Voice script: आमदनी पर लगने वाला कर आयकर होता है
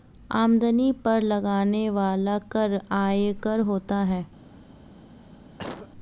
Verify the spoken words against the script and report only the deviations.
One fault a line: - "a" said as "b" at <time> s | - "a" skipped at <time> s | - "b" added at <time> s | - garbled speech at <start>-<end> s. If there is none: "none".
none